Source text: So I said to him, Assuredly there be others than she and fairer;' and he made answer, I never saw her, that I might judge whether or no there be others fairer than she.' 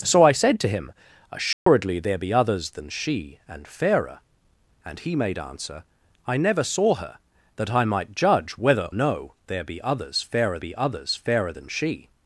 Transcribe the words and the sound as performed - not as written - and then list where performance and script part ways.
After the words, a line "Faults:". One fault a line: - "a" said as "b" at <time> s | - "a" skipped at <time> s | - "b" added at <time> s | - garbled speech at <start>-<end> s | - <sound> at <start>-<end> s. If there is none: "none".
So I said to him, Assuredly there be others than she and fairer;' and he made answer, I never saw her, that I might judge whether no there be others fairer be others fairer than she.'
Faults:
- dropout at 1.5-1.7 s
- "or" skipped at 8.9 s
- "be others fairer" added at 10.6 s